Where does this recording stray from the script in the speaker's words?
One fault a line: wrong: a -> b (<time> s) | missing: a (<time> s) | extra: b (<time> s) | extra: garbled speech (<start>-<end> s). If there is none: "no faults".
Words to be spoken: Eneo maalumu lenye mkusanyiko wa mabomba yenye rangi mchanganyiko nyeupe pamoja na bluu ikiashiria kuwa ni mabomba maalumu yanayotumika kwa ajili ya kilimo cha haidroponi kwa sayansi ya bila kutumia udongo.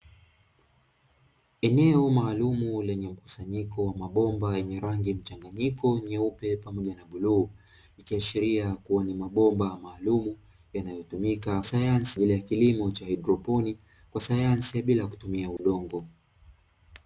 wrong: kwa -> sayansi (11.6 s)